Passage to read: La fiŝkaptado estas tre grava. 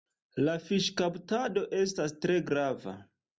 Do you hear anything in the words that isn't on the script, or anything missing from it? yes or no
no